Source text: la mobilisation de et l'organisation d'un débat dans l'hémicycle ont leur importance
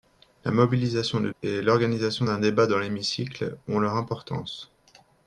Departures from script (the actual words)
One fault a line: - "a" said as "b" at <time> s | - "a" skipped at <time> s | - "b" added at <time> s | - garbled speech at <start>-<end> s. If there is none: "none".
none